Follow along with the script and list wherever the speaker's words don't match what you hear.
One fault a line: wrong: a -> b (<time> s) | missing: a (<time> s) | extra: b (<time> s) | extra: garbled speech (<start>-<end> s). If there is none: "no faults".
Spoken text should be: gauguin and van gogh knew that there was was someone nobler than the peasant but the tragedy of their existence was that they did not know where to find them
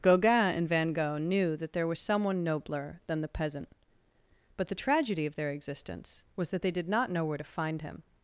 missing: was (2.0 s)
wrong: them -> him (7.8 s)